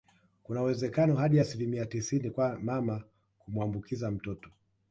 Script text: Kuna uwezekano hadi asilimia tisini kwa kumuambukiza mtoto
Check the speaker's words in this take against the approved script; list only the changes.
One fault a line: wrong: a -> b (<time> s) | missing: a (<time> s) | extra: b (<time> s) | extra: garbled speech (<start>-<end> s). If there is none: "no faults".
extra: mama (2.6 s)